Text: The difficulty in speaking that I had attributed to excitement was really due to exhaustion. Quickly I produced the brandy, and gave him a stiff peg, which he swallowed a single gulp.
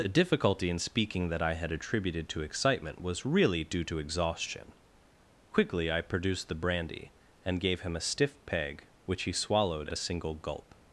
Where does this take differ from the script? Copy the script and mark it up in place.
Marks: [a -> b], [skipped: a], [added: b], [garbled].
The difficulty in speaking that I had attributed to excitement was really due to exhaustion. Quickly I produced the brandy, and gave him a stiff peg, which he swallowed a single gulp.